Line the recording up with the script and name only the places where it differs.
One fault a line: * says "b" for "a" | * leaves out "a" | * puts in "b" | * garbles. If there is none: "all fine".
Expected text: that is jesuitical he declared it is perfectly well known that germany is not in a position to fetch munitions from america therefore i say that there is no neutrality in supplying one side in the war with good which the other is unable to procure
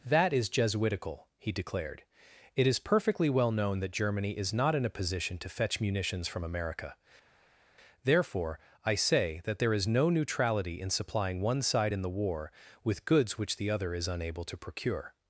* says "goods" for "good"